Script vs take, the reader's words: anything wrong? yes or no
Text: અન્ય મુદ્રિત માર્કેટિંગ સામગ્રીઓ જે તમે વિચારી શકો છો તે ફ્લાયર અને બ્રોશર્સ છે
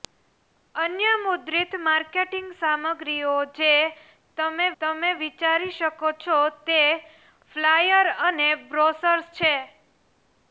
yes